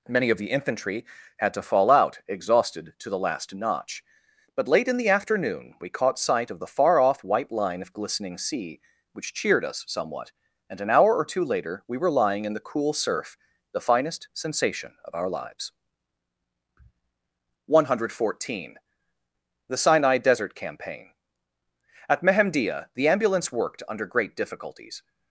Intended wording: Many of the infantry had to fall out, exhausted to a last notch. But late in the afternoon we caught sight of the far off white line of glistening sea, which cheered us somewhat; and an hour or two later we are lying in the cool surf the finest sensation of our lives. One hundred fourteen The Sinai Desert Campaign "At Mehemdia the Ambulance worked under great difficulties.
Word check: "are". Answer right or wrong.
wrong